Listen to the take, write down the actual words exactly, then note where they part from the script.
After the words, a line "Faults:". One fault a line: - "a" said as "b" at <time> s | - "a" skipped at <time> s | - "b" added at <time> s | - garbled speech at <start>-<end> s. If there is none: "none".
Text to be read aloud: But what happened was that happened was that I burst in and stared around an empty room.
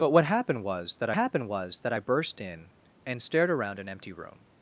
But what happened was that happened was that I burst in and stared around an empty room.
Faults:
none